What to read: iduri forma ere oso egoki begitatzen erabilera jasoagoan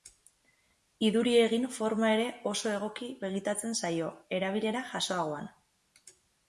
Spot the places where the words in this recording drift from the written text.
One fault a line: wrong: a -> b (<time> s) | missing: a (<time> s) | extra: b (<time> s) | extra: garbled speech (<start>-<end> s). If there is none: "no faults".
extra: egin (1.4 s)
extra: zaio (3.8 s)